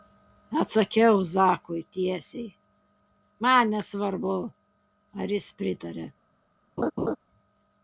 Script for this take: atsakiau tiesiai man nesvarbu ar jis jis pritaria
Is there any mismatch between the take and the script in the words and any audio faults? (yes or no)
yes